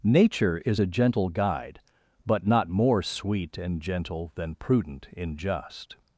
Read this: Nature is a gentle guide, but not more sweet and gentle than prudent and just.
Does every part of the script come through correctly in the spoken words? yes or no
no